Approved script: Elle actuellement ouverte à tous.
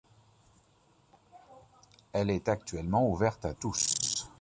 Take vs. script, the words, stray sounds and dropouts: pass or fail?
fail